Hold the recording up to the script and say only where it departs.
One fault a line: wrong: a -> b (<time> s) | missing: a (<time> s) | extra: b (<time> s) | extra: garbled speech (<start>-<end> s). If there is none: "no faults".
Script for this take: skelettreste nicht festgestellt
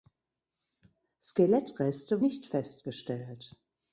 no faults